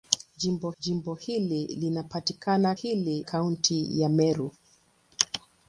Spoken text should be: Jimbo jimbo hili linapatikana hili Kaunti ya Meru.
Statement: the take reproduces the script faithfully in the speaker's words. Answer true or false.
true